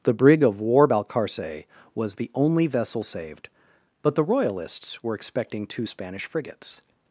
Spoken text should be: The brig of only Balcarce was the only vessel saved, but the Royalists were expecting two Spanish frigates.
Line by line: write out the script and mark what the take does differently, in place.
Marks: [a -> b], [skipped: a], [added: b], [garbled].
The brig of [only -> war] Balcarce was the only vessel saved, but the Royalists were expecting two Spanish frigates.